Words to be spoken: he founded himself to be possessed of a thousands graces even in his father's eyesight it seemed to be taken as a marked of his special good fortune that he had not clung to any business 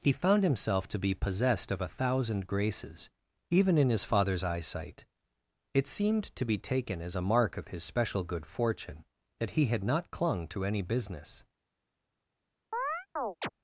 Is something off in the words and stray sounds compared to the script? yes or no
yes